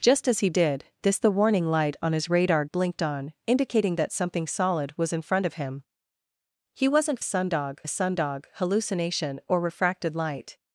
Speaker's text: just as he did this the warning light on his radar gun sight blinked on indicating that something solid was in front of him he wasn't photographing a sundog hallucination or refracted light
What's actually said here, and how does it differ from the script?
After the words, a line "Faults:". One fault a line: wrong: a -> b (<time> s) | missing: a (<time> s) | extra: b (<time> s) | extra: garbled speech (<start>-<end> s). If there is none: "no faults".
just as he did this the warning light on his radar blinked on indicating that something solid was in front of him he wasn't sundog a sundog hallucination or refracted light
Faults:
missing: gun sight (2.6 s)
wrong: photographing -> sundog (7.2 s)